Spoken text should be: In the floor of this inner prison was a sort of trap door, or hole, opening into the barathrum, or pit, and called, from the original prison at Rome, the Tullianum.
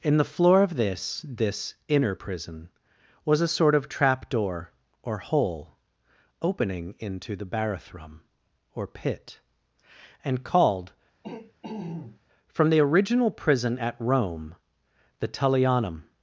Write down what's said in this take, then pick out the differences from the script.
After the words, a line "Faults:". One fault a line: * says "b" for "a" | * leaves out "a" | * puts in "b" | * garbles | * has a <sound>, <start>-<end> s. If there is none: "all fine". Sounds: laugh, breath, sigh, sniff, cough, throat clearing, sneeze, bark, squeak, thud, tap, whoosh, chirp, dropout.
In the floor of this this inner prison was a sort of trap door, or hole, opening into the barathrum, or pit, and called, from the original prison at Rome, the Tullianum.
Faults:
* puts in "this"
* has a throat clearing, 11.2-12.2 s